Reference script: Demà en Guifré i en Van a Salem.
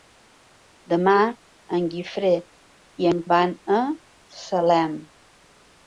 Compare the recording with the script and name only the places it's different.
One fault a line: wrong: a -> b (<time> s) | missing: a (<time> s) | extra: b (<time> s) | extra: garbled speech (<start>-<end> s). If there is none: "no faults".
no faults